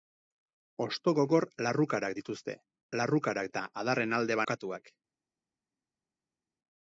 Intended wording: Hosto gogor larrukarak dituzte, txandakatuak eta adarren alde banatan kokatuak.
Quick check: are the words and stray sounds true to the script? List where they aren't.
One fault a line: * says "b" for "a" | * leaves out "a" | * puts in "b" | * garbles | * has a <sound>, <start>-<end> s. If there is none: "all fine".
* says "larrukarak" for "txandakatuak"
* leaves out "banatan"